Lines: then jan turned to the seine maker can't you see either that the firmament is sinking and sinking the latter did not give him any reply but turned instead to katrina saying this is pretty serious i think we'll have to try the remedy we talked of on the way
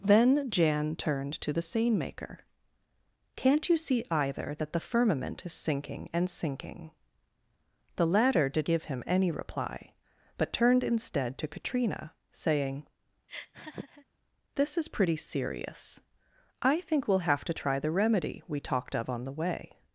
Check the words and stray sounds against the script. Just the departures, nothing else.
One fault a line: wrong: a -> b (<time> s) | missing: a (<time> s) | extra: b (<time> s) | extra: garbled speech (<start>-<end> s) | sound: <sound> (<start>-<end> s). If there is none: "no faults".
missing: not (8.7 s)
sound: laugh (13.3-14.1 s)